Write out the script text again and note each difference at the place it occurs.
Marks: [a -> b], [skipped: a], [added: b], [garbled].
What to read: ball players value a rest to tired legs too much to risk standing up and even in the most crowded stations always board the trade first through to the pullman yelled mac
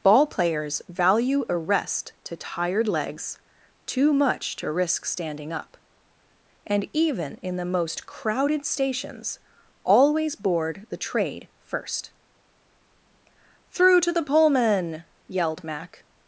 ball players value a rest to tired legs too much to risk standing up and even in the most crowded stations always board the trade first through to the pullman yelled mac